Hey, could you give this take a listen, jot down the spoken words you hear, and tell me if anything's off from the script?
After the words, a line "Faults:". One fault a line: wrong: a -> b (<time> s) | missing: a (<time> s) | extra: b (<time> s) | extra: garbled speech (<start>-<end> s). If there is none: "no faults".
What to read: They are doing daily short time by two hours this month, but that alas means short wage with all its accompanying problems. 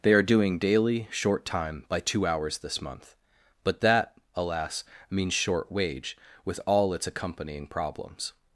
They are doing daily short time by two hours this month, but that alas means short wage with all its accompanying problems.
Faults:
no faults